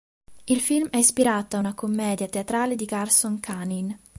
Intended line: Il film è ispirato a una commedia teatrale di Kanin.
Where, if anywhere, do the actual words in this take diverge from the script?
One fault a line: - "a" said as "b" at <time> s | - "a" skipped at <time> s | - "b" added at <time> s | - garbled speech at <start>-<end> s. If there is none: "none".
- "Garson" added at 2.8 s